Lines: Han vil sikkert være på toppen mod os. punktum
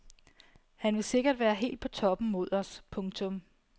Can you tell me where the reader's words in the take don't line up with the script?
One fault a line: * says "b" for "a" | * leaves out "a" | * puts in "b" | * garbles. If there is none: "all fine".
* puts in "helt"